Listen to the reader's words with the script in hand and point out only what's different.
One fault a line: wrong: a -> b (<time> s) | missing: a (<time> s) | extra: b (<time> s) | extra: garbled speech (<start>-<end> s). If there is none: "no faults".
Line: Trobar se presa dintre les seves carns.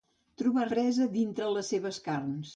missing: se (0.6 s)